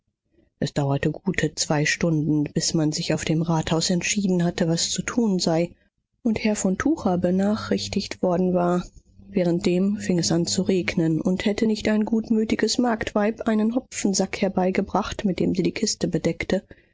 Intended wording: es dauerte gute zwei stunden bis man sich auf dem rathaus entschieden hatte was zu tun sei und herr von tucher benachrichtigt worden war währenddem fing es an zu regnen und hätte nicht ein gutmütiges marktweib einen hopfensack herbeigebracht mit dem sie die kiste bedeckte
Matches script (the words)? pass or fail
pass